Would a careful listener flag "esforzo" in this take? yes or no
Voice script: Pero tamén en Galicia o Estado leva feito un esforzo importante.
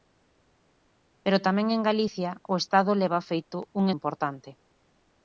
yes